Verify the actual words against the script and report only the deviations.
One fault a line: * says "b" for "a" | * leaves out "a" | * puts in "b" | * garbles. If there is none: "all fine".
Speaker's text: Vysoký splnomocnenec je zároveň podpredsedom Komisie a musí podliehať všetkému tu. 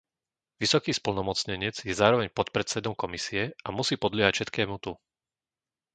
all fine